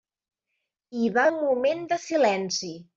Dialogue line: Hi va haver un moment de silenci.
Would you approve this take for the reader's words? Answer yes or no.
no